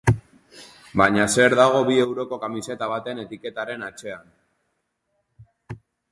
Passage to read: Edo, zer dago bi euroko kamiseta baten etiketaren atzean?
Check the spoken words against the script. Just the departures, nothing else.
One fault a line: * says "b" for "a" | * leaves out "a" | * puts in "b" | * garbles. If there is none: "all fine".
* says "Baina" for "Edo"